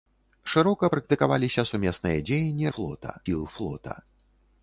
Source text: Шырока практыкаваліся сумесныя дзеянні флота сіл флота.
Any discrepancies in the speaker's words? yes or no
no